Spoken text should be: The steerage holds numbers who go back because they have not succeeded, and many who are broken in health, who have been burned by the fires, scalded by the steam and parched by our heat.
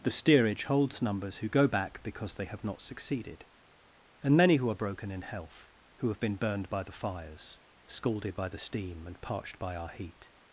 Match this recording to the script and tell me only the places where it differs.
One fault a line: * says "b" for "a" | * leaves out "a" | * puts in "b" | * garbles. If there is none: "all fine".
all fine